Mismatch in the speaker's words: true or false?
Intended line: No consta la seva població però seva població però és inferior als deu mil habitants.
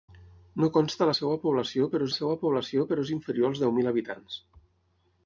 false